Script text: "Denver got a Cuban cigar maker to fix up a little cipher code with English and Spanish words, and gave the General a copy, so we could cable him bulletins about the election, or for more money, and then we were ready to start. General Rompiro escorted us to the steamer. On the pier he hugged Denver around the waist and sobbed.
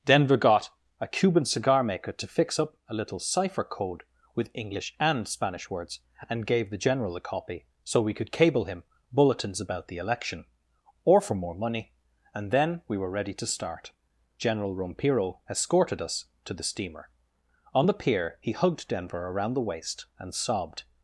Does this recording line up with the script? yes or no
yes